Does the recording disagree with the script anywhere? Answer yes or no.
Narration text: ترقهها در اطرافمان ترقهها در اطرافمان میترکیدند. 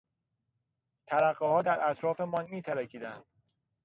yes